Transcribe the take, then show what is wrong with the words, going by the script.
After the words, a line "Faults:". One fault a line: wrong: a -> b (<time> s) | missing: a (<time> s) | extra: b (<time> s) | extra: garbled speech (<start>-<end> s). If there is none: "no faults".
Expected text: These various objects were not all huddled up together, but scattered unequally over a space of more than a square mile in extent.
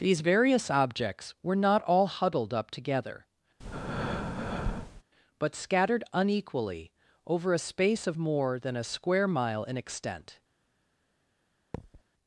These various objects were not all huddled up together, but scattered unequally over a space of more than a square mile in extent.
Faults:
no faults